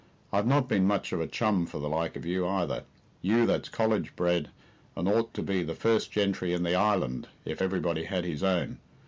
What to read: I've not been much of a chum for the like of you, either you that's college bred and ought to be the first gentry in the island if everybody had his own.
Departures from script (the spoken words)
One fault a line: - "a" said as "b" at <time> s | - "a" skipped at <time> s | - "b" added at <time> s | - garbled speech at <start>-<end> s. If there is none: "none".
none